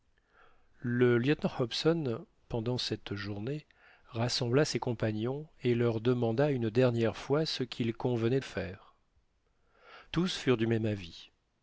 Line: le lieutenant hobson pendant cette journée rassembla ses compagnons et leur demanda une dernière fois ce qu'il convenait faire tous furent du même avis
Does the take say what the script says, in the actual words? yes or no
yes